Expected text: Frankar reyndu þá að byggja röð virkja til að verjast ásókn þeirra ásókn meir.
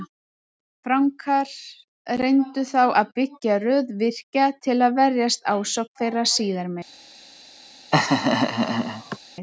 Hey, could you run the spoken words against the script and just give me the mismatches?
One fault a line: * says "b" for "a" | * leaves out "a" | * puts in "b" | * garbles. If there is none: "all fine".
* says "síðar" for "ásókn"